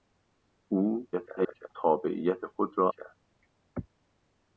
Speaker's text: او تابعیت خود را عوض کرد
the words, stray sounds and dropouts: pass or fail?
fail